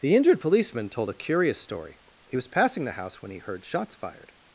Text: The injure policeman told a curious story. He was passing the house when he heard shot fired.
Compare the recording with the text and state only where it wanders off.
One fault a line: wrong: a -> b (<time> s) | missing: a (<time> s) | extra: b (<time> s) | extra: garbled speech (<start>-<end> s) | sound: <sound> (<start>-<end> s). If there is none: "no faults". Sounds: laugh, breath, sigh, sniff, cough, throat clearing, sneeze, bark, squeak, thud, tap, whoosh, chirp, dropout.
wrong: injure -> injured (0.1 s)
wrong: shot -> shots (3.6 s)